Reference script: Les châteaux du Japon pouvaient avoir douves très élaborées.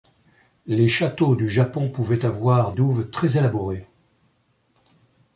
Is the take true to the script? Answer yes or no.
yes